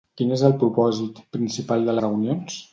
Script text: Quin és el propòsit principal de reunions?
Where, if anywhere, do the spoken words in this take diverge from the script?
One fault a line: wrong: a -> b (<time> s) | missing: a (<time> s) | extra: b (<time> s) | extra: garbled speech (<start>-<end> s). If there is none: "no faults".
no faults